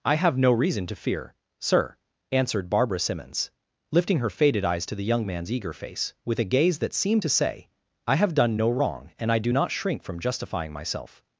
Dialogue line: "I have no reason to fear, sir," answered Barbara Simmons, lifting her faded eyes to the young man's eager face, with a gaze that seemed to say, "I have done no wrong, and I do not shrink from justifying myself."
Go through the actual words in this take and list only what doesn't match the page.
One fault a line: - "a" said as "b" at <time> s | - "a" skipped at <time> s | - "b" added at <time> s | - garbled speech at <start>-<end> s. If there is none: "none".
none